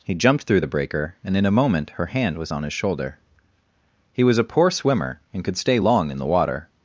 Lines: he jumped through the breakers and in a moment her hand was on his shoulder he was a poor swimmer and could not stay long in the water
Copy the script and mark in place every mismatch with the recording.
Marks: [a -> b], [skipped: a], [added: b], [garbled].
he jumped through the [breakers -> breaker] and in a moment her hand was on his shoulder he was a poor swimmer and could [skipped: not] stay long in the water